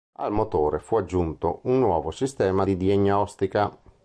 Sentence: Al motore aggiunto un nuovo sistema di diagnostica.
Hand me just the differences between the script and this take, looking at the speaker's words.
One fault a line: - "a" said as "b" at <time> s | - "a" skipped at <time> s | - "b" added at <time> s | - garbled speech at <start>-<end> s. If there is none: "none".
- "fu" added at 0.8 s